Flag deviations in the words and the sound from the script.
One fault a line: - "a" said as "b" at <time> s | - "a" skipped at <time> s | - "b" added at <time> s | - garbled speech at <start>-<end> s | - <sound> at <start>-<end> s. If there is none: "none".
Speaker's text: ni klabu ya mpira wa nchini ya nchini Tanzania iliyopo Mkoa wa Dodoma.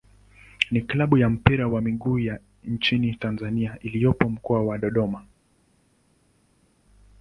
- "nchini" said as "miguu" at 1.8 s